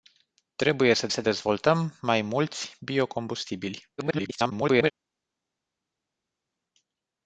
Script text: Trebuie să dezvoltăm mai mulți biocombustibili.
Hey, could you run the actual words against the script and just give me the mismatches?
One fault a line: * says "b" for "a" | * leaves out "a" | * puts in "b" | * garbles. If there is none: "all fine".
* puts in "să"
* garbles